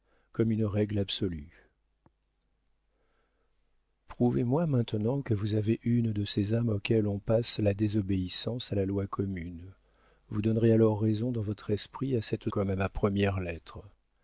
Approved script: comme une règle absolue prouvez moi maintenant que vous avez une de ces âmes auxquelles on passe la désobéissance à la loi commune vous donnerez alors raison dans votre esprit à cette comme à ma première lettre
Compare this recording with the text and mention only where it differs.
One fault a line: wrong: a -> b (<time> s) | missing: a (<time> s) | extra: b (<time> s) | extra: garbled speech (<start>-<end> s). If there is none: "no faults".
no faults